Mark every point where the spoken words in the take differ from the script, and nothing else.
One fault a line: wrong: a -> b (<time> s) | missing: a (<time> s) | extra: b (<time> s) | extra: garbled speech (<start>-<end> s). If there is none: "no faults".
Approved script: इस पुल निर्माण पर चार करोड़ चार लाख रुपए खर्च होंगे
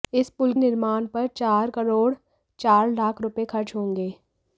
no faults